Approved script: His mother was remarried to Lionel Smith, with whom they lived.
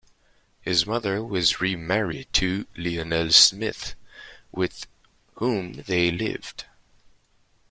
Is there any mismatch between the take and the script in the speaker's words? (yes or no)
no